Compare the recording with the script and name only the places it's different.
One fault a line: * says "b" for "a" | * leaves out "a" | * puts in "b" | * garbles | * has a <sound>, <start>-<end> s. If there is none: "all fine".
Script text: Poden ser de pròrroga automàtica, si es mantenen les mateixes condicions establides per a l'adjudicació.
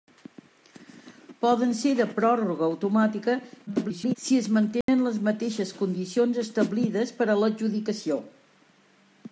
* garbles
* has a dropout, 4.8-4.9 s